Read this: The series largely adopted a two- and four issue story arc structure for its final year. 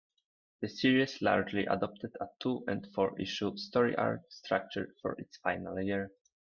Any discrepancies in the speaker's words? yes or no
no